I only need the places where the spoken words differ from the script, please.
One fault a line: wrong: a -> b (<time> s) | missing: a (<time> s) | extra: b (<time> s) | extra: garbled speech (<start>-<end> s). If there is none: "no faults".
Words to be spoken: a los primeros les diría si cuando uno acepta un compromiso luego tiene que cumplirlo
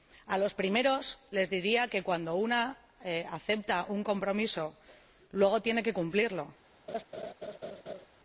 wrong: si -> que (1.9 s)